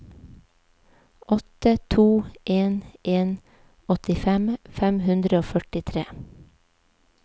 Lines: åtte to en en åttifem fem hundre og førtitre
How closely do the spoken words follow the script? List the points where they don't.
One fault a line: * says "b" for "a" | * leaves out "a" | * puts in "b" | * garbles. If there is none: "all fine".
all fine